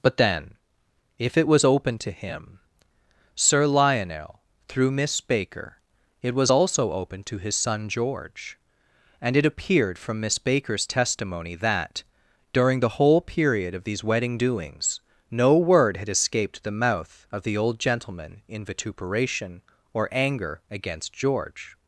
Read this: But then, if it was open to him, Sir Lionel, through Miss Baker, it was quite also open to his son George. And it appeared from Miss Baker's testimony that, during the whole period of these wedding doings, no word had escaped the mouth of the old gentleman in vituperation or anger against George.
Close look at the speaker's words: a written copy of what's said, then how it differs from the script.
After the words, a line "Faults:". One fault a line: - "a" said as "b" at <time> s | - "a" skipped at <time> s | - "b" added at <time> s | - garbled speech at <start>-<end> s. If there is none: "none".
But then, if it was open to him, Sir Lionel, through Miss Baker, it was also open to his son George. And it appeared from Miss Baker's testimony that, during the whole period of these wedding doings, no word had escaped the mouth of the old gentleman in vituperation or anger against George.
Faults:
- "quite" skipped at 6.5 s